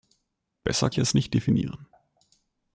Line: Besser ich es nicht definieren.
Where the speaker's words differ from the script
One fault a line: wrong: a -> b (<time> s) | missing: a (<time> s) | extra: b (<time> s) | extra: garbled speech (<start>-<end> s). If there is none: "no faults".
no faults